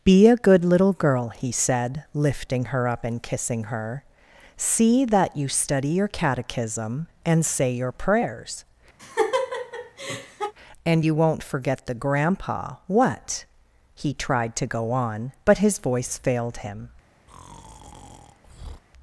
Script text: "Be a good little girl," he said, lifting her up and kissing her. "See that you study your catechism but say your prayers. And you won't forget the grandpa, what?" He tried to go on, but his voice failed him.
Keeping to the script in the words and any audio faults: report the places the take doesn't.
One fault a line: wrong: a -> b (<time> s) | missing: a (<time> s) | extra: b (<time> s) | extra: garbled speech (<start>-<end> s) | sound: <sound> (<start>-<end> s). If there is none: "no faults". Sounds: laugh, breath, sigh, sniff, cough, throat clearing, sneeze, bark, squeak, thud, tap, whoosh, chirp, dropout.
wrong: but -> and (7.3 s)
sound: laugh (9.0-10.5 s)
sound: breath (17.3-18.8 s)